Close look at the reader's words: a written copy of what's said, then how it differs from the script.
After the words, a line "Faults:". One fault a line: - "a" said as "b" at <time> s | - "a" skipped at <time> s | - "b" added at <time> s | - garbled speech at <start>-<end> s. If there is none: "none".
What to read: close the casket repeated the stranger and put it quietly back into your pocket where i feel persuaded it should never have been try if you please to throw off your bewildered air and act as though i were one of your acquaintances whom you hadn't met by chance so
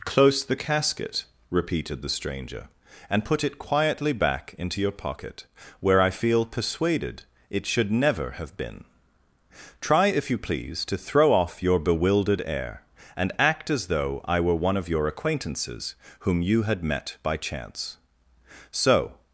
close the casket repeated the stranger and put it quietly back into your pocket where i feel persuaded it should never have been try if you please to throw off your bewildered air and act as though i were one of your acquaintances whom you had met by chance so
Faults:
- "hadn't" said as "had" at 16.6 s